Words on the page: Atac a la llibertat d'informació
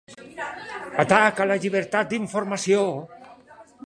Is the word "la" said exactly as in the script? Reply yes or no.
yes